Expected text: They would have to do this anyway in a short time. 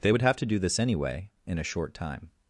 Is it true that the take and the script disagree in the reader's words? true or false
false